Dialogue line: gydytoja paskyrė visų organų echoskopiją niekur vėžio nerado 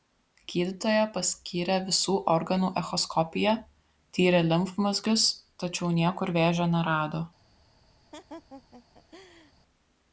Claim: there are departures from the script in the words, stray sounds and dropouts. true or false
true